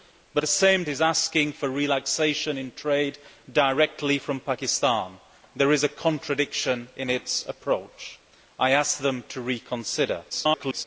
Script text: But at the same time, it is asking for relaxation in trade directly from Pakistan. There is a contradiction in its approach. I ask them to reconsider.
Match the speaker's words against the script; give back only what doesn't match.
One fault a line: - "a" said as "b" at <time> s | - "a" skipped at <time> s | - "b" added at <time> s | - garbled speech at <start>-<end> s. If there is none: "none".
- "at" skipped at 0.4 s
- "time it" skipped at 0.8 s
- garbled speech at 10.3-10.8 s